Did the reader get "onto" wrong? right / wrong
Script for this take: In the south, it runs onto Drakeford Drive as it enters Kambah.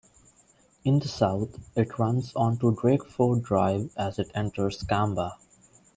right